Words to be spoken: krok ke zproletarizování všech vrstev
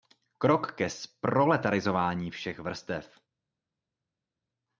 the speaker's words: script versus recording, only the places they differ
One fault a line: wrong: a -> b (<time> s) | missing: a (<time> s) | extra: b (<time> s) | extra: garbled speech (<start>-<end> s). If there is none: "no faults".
no faults